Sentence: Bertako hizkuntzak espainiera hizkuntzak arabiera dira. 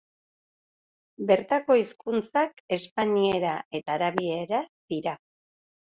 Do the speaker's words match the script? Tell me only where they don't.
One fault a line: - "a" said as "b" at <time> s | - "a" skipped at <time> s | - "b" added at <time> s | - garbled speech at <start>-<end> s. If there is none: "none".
- "hizkuntzak" said as "eta" at 3.8 s